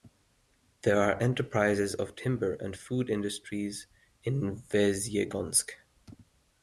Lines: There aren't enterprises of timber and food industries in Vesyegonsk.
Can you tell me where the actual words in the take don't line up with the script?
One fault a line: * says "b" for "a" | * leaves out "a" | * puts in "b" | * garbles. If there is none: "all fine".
* says "are" for "aren't"